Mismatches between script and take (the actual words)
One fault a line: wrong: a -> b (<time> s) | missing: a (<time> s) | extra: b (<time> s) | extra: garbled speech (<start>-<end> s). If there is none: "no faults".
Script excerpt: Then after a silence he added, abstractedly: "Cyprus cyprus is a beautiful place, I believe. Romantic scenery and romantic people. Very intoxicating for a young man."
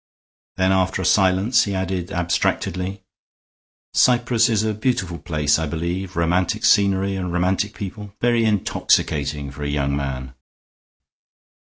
missing: cyprus (4.5 s)